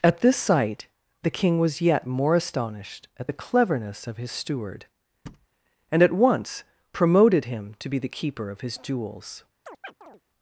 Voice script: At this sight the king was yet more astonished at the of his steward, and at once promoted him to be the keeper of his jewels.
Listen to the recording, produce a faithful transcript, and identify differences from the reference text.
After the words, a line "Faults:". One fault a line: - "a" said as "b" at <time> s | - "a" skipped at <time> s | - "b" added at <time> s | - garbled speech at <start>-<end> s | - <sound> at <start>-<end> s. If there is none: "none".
At this sight the king was yet more astonished at the cleverness of his steward, and at once promoted him to be the keeper of his jewels.
Faults:
- "cleverness" added at 3.4 s
- thud at 5.3-5.5 s
- chirp at 9.7-10.2 s